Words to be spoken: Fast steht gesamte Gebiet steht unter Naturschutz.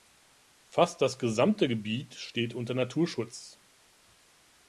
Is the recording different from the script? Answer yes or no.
yes